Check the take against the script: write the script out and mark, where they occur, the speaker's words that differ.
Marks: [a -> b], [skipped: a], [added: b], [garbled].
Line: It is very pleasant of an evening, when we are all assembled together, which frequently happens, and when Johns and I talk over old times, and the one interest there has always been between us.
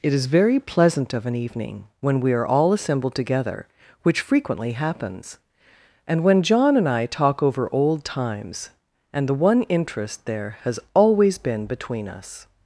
It is very pleasant of an evening, when we are all assembled together, which frequently happens, and when [Johns -> John] and I talk over old times, and the one interest there has always been between us.